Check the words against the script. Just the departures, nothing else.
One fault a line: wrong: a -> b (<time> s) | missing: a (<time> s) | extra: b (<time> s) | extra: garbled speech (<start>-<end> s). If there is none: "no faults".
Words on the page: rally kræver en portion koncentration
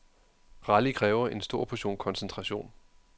extra: stor (1.4 s)